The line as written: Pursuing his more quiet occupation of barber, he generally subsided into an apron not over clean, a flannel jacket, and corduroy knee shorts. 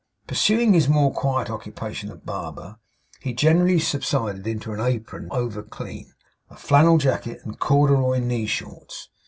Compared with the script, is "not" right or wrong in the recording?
wrong